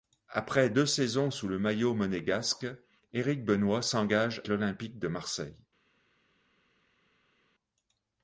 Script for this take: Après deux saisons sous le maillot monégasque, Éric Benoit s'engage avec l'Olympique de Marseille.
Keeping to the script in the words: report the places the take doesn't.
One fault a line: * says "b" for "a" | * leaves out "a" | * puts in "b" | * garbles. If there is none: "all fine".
* leaves out "avec"